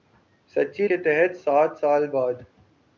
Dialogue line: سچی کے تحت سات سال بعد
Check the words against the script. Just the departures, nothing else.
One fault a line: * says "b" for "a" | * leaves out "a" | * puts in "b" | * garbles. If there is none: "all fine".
all fine